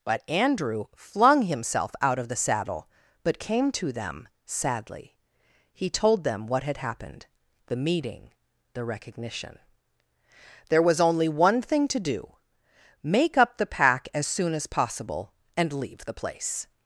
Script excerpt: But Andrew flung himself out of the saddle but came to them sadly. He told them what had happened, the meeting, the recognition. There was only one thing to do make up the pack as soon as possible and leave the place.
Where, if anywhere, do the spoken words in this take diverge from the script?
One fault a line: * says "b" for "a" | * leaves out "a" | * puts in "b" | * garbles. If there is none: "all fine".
all fine